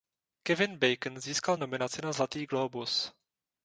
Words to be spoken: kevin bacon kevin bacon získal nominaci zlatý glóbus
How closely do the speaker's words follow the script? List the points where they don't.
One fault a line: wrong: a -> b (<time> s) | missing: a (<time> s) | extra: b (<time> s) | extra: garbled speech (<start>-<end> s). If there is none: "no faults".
missing: kevin bacon (1.2 s)
extra: na (2.0 s)